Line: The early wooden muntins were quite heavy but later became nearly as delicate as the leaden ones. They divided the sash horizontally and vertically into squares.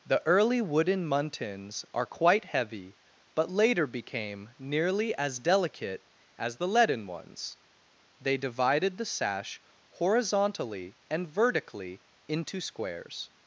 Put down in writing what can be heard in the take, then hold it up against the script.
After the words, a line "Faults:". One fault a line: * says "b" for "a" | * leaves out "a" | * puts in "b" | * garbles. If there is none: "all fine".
The early wooden muntins are quite heavy but later became nearly as delicate as the leaden ones. They divided the sash horizontally and vertically into squares.
Faults:
* says "are" for "were"